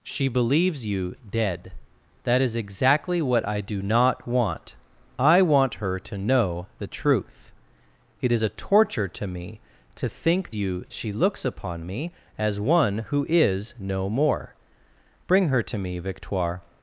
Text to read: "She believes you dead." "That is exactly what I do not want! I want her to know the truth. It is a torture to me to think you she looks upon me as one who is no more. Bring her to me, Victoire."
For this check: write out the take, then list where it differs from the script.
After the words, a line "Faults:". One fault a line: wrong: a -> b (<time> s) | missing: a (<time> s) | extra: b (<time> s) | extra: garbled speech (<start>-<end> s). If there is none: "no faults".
"She believes you dead." "That is exactly what I do not want! I want her to know the truth. It is a torture to me to think you she looks upon me as one who is no more. Bring her to me, Victoire."
Faults:
no faults